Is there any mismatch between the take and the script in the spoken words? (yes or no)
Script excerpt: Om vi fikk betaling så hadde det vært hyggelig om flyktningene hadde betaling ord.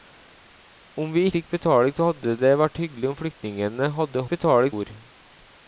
no